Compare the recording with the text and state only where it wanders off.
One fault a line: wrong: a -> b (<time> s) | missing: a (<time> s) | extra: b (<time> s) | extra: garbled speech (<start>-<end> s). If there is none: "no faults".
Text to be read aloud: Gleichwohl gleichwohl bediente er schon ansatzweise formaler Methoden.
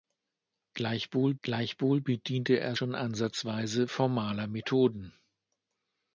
no faults